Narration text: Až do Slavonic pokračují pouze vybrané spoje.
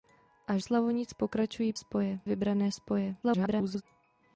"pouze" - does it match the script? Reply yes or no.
no